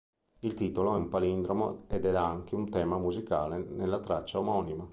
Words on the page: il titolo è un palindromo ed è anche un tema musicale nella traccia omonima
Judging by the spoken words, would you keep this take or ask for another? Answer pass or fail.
pass